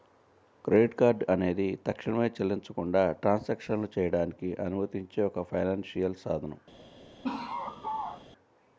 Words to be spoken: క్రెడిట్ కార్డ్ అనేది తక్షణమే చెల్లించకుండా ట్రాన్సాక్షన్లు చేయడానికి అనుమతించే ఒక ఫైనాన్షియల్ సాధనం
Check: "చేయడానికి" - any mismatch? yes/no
no